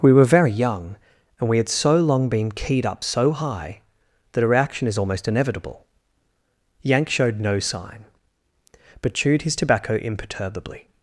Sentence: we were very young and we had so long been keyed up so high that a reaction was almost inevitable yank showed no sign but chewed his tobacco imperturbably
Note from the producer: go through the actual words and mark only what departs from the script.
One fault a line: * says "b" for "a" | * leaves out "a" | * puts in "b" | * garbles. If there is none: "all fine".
* says "is" for "was"